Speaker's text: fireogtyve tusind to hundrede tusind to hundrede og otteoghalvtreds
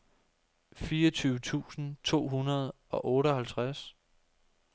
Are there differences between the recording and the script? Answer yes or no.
yes